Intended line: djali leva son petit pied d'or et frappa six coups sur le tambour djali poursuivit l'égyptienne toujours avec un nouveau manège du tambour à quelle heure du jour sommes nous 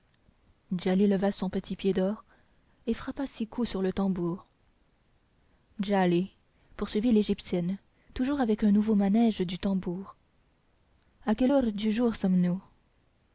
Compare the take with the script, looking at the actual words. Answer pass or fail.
pass